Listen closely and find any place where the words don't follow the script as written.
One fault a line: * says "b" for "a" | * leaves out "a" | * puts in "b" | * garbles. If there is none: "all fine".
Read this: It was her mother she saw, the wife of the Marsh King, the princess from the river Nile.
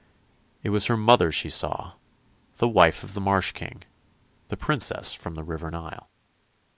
all fine